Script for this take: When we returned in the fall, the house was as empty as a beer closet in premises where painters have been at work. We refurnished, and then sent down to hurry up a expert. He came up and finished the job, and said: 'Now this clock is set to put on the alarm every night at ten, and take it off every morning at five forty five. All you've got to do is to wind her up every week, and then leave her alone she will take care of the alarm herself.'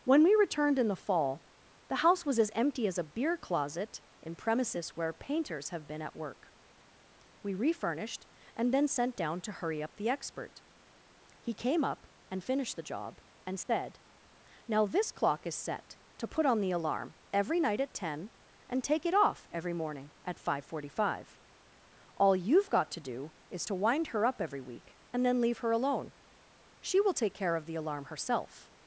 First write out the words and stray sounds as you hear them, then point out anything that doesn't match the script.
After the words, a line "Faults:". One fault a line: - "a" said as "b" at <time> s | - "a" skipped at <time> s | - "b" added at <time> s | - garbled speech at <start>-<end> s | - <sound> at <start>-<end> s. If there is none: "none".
When we returned in the fall, the house was as empty as a beer closet in premises where painters have been at work. We refurnished, and then sent down to hurry up the expert. He came up and finished the job, and said: 'Now this clock is set to put on the alarm every night at ten, and take it off every morning at five forty five. All you've got to do is to wind her up every week, and then leave her alone she will take care of the alarm herself.'
Faults:
- "a" said as "the" at 9.9 s
- dropout at 13.6-13.7 s